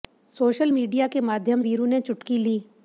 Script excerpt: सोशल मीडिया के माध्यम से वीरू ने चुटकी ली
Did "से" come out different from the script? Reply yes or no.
yes